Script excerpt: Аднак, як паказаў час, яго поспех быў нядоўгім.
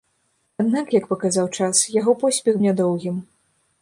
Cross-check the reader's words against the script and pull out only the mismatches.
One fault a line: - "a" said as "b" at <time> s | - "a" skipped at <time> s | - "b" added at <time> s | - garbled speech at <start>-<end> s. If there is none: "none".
- "быў" skipped at 2.5 s